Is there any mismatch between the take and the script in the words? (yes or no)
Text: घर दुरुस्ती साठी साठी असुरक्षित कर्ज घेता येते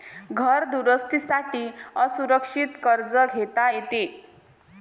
yes